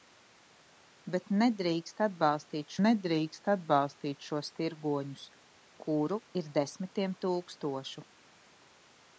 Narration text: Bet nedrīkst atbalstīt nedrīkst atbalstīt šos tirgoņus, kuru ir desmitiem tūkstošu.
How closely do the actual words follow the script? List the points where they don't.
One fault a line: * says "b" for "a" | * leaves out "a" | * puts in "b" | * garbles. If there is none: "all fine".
all fine